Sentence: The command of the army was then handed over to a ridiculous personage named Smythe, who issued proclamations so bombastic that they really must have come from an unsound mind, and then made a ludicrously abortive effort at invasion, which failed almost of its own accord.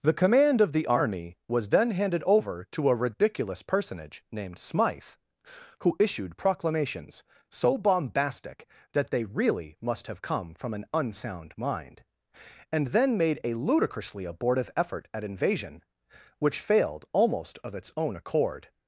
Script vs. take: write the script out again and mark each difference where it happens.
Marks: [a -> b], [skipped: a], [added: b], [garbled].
The command of the army was then handed over to a ridiculous personage named Smythe, who issued proclamations so bombastic that they really must have come from an unsound mind, and then made a ludicrously abortive effort at invasion, which failed almost of its own accord.